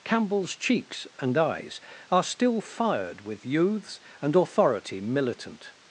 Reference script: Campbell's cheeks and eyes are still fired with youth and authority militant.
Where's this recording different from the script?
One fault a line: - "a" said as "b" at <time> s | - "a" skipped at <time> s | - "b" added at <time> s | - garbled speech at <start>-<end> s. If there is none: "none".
- "youth" said as "youths" at 3.5 s